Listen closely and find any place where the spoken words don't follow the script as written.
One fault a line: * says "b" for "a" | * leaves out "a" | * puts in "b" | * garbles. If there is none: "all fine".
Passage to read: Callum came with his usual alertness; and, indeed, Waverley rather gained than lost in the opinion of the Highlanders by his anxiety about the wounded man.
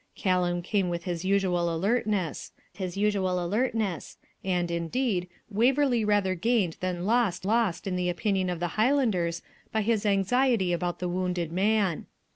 * puts in "his usual alertness"
* puts in "lost"